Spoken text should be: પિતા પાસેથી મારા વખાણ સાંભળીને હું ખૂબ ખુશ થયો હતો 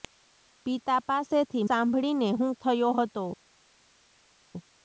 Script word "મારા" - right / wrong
wrong